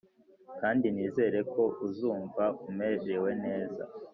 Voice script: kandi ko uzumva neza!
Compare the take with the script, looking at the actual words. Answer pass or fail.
fail